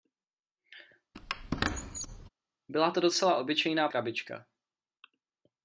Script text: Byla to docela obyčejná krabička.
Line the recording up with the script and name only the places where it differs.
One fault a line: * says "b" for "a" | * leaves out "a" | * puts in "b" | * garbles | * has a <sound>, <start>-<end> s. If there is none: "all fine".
* has a squeak, 1.1-2.3 s